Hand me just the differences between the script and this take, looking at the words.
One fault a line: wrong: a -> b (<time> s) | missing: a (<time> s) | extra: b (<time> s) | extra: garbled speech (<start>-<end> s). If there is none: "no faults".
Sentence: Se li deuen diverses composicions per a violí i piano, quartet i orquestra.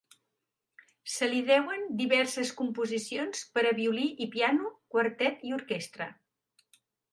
no faults